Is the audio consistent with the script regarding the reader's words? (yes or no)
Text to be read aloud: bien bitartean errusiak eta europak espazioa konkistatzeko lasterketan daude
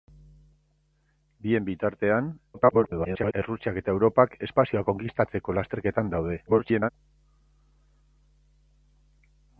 no